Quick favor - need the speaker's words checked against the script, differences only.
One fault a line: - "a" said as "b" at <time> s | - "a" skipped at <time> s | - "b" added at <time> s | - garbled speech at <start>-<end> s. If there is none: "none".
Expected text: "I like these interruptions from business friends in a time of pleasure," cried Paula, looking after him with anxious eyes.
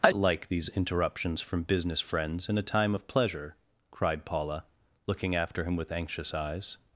none